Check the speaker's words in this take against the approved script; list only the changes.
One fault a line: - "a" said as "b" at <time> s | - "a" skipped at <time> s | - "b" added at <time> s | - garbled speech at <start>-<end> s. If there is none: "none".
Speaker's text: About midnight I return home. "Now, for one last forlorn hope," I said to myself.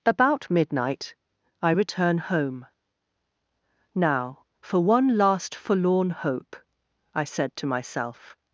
none